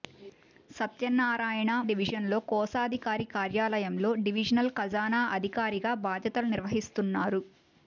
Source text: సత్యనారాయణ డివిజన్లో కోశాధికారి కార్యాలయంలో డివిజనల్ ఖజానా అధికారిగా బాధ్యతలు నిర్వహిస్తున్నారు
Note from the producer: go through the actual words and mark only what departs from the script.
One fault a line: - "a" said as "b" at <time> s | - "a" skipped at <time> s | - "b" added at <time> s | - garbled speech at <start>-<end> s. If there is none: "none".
none